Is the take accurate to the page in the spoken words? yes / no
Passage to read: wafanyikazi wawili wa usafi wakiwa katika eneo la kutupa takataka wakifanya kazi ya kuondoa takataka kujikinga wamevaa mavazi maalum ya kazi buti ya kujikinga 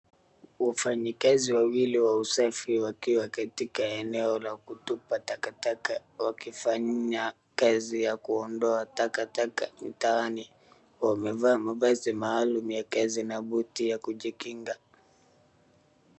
no